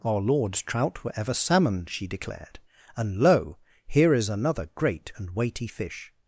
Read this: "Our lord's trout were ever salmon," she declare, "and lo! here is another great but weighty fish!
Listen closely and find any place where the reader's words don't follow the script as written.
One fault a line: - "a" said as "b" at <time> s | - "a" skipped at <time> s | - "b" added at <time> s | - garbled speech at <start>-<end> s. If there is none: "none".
- "declare" said as "declared" at 2.1 s
- "but" said as "and" at 5.2 s